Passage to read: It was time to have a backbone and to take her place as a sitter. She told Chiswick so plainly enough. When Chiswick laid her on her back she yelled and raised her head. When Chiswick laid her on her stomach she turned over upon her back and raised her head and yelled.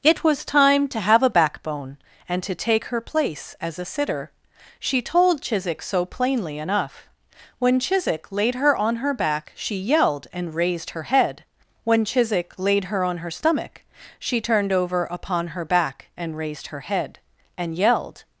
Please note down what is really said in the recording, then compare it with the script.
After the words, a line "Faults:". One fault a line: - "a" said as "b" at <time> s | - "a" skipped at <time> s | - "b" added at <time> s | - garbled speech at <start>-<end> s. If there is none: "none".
It was time to have a backbone and to take her place as a sitter. She told Chiswick so plainly enough. When Chiswick laid her on her back she yelled and raised her head. When Chiswick laid her on her stomach she turned over upon her back and raised her head and yelled.
Faults:
none